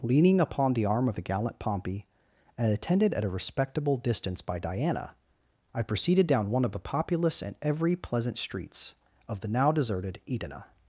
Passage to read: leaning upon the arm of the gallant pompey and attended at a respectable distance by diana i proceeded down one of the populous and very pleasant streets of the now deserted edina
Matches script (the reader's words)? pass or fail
fail